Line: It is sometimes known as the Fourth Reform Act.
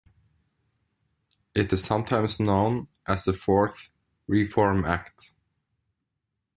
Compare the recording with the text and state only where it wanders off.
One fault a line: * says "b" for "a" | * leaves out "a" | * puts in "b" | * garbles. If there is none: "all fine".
all fine